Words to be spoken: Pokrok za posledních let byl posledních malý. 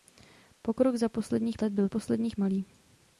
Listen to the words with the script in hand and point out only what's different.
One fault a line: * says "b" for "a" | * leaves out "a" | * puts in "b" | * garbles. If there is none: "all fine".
all fine